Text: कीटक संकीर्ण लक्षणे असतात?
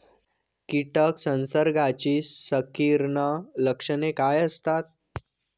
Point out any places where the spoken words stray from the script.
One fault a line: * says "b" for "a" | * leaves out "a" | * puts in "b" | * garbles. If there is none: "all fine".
* puts in "संसर्गाची"
* puts in "काय"